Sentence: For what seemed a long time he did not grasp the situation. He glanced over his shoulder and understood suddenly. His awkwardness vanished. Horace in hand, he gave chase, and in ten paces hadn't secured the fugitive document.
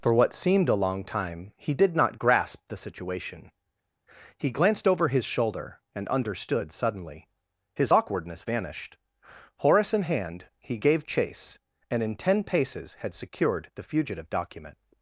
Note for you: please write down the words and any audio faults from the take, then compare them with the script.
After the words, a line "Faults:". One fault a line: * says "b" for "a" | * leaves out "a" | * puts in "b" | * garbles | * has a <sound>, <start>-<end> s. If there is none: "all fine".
For what seemed a long time he did not grasp the situation. He glanced over his shoulder and understood suddenly. His awkwardness vanished. Horace in hand, he gave chase, and in ten paces had secured the fugitive document.
Faults:
* says "had" for "hadn't"